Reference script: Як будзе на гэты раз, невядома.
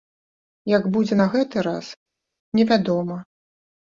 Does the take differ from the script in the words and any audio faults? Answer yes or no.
no